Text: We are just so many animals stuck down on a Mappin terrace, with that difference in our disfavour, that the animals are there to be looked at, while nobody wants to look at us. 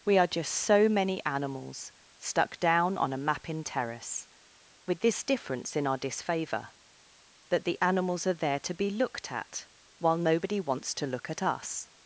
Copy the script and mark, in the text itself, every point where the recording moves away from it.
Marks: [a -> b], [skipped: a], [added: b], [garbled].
We are just so many animals stuck down on a Mappin terrace, with [that -> this] difference in our disfavour, that the animals are there to be looked at, while nobody wants to look at us.